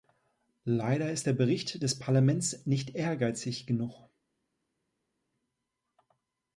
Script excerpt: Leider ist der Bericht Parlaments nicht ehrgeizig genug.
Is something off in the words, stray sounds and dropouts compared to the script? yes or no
yes